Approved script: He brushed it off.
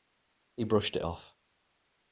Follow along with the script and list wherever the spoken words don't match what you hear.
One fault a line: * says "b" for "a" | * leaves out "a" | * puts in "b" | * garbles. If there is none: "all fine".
all fine